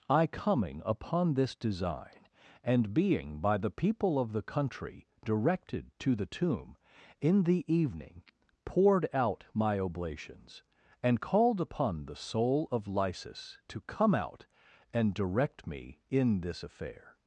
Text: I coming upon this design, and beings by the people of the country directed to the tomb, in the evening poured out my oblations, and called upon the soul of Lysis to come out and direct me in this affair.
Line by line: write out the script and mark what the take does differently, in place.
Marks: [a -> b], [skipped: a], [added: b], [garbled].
I coming upon this design, and [beings -> being] by the people of the country directed to the tomb, in the evening poured out my oblations, and called upon the soul of Lysis to come out and direct me in this affair.